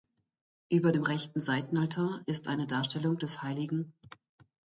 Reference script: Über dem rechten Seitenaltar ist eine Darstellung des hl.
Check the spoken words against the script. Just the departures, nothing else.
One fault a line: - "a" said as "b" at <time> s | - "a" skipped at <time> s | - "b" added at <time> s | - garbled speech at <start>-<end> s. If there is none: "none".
none